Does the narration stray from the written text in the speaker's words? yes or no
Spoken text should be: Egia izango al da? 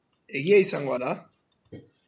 yes